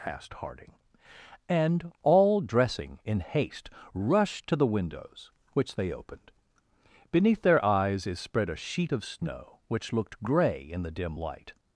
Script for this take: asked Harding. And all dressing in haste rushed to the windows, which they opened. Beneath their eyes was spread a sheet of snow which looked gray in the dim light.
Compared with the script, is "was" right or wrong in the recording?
wrong